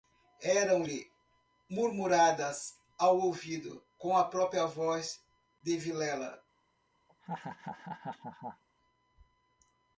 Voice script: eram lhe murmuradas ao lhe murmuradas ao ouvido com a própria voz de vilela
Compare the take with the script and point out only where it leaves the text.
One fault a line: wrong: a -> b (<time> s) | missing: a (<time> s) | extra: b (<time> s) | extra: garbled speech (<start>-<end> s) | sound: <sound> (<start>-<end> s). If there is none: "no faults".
missing: lhe murmuradas ao (3.2 s)
sound: laugh (7.1-8.6 s)